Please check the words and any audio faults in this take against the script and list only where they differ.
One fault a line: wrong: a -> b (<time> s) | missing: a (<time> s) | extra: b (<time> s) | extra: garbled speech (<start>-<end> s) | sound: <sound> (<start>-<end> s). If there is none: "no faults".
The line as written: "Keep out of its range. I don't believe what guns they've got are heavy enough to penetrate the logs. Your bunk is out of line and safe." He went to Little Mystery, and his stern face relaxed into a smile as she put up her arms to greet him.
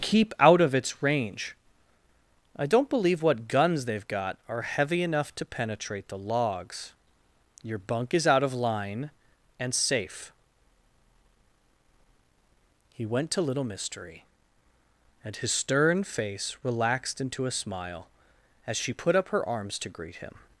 no faults